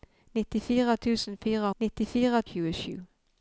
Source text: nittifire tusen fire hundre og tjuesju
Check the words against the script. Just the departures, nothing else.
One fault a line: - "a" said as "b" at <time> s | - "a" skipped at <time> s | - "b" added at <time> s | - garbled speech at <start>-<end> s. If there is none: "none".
- "hundre" said as "nittifire" at 1.8 s